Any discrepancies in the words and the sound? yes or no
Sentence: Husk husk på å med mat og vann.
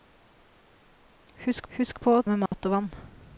yes